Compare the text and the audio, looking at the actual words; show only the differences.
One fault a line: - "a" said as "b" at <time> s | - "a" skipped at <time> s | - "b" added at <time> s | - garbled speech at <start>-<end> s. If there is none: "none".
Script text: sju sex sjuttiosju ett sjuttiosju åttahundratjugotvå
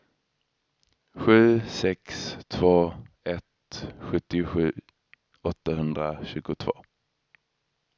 - "sjuttiosju" said as "två" at 2.5 s